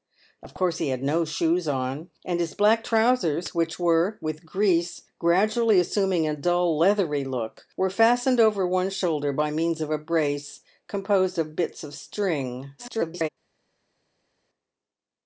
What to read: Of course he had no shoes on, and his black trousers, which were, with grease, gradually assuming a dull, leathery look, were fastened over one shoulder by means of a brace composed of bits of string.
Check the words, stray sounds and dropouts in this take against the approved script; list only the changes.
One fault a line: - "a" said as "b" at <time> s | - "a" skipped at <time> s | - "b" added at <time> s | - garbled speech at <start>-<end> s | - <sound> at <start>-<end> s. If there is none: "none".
- garbled speech at 12.8-13.3 s